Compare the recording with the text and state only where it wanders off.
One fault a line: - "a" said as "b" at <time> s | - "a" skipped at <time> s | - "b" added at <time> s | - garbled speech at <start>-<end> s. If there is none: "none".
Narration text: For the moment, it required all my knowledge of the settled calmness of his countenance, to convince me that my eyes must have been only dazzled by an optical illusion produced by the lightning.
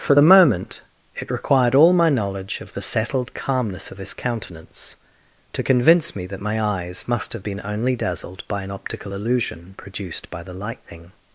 none